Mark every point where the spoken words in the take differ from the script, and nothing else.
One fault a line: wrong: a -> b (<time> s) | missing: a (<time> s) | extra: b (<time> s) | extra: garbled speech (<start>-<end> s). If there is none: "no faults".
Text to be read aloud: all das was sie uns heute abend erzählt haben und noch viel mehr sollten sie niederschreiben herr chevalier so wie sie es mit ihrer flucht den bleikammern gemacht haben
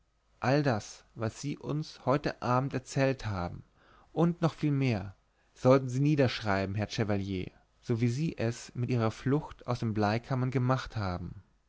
extra: aus (9.6 s)